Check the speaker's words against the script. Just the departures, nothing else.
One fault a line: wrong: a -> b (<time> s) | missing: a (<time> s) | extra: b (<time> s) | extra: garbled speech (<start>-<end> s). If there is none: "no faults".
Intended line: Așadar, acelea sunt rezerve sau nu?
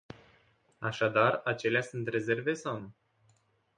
no faults